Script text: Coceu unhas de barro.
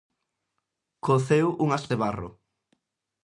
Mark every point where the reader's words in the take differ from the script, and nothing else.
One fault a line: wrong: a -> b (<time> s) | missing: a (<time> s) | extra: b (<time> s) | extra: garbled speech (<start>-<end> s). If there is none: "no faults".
no faults